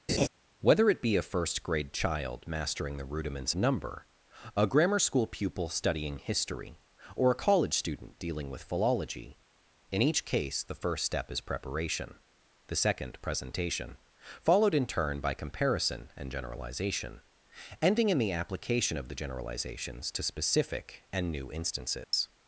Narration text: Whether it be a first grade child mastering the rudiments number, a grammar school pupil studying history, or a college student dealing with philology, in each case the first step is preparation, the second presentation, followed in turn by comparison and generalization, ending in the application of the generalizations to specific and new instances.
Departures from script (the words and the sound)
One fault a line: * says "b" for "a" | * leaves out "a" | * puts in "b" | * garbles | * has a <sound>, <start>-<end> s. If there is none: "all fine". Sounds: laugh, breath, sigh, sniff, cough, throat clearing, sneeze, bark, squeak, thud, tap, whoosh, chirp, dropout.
* has a laugh, 0.1-0.3 s
* has a dropout, 22.0-22.1 s